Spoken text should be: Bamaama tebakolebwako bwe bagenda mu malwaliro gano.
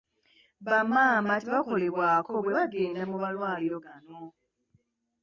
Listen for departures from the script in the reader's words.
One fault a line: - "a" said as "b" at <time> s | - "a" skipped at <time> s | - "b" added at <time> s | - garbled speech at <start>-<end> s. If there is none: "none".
none